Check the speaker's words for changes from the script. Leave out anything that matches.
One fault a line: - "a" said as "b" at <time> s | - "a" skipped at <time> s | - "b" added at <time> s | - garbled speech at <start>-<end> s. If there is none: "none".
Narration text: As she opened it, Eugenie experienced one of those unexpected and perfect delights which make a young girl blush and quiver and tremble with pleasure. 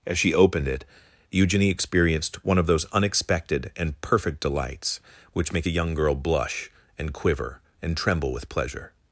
none